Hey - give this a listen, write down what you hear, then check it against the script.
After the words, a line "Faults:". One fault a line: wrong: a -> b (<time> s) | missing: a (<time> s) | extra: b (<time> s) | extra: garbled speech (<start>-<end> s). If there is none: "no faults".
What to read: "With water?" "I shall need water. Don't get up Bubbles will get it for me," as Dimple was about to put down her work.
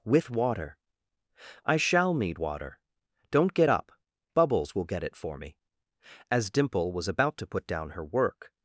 "With water?" "I shall need water. Don't get up Bubbles will get it for me," as Dimple was about to put down her work.
Faults:
no faults